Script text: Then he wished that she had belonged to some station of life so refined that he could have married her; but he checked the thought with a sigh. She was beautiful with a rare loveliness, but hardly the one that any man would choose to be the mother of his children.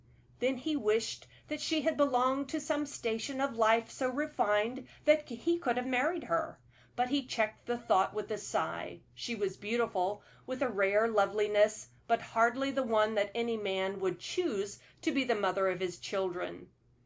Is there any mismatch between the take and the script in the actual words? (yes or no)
no